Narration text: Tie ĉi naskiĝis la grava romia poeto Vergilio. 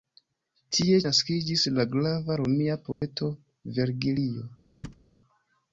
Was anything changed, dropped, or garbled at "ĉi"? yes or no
yes